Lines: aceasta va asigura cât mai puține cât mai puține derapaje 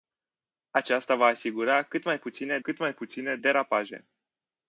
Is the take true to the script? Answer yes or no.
yes